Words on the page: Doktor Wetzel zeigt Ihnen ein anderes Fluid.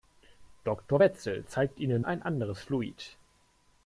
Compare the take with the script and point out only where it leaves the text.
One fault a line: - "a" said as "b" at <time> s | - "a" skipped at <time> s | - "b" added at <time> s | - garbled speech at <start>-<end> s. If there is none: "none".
none